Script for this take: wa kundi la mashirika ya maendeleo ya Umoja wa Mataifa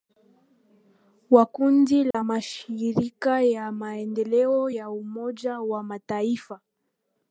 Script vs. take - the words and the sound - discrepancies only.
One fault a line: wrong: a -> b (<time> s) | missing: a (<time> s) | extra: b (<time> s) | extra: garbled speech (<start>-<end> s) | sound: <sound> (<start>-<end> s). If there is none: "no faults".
sound: dropout (2.1-2.1 s)